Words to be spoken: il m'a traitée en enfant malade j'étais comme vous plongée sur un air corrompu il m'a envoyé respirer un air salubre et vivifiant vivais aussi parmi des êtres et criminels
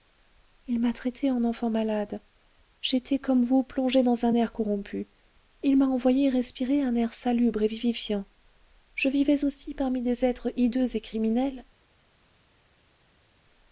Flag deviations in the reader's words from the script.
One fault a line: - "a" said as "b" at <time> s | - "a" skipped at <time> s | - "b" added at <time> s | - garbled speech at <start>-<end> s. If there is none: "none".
- "sur" said as "dans" at 4.0 s
- "je" added at 8.9 s
- "hideux" added at 10.5 s